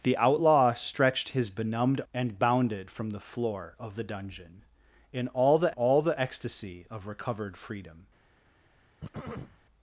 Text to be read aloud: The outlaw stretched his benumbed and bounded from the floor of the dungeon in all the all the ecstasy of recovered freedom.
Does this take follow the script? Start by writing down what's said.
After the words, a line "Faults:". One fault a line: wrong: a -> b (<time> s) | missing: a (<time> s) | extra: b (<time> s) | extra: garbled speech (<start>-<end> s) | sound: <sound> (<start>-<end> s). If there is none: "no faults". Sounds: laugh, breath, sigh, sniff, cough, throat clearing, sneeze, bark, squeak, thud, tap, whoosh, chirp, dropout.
The outlaw stretched his benumbed and bounded from the floor of the dungeon in all the all the ecstasy of recovered freedom.
Faults:
sound: throat clearing (9.0-9.6 s)